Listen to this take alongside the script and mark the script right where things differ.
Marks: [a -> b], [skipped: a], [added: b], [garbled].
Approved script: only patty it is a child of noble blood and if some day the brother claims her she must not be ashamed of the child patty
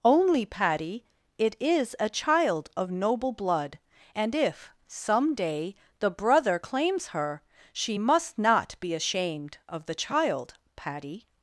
only patty it is a child of noble blood and if some day the brother claims her she must not be ashamed of the child patty